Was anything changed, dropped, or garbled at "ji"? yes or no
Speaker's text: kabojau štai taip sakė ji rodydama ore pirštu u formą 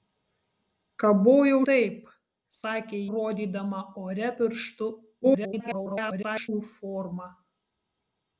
yes